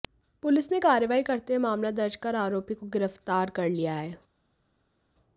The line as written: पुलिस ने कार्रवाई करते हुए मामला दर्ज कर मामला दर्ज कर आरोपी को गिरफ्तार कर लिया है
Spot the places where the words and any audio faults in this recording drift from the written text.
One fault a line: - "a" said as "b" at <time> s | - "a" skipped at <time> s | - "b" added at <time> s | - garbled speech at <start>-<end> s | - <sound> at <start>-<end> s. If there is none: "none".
- "मामला दर्ज कर" skipped at 2.4 s